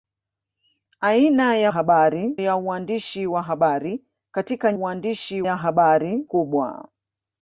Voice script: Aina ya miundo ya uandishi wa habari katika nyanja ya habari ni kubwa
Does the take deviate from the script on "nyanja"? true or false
true